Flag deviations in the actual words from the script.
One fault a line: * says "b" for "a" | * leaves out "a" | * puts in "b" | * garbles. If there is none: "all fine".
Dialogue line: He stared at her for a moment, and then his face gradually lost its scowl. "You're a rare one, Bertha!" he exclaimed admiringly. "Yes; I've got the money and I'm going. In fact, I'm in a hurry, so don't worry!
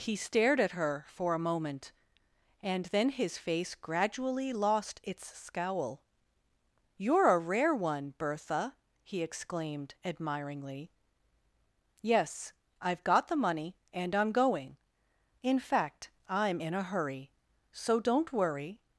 all fine